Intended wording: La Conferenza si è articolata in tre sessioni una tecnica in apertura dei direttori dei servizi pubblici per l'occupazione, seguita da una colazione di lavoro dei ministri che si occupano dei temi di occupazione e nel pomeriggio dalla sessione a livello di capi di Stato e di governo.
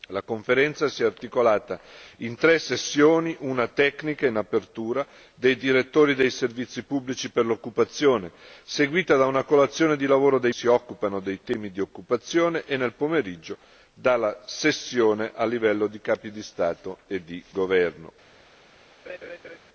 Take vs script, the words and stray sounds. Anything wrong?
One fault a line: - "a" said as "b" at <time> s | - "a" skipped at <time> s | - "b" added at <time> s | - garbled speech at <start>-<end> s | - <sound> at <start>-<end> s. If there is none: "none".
- "ministri che" skipped at 10.5 s
- laugh at 19.1-19.6 s